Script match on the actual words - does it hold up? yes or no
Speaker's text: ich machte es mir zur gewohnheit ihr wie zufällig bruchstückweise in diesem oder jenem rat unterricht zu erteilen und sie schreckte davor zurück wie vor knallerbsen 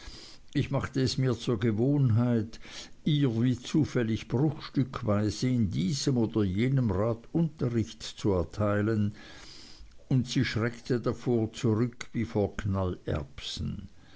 yes